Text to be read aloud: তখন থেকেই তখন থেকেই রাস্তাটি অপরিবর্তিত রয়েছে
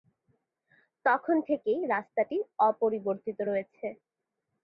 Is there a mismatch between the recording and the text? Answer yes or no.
yes